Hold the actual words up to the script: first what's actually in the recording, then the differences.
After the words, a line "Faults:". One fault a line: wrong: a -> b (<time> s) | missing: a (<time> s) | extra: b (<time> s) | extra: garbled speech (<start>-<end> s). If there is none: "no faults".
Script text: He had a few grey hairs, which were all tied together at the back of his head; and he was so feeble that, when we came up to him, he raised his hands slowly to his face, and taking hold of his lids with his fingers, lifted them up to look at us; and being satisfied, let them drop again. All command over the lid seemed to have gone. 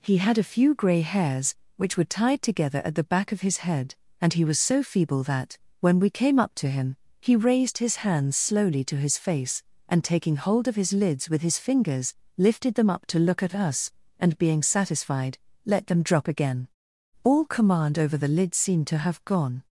He had a few grey hairs, which were tied together at the back of his head; and he was so feeble that, when we came up to him, he raised his hands slowly to his face, and taking hold of his lids with his fingers, lifted them up to look at us; and being satisfied, let them drop again. All command over the lid seemed to have gone.
Faults:
missing: all (2.2 s)